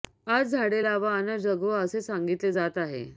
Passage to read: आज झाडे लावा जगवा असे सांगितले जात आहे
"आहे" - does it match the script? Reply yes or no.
yes